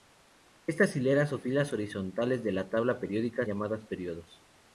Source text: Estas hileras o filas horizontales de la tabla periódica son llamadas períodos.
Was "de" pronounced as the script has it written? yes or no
yes